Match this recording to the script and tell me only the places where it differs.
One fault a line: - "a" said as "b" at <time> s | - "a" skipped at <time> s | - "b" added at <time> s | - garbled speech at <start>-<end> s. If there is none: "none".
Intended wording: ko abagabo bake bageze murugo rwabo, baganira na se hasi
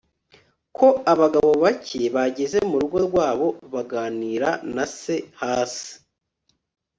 none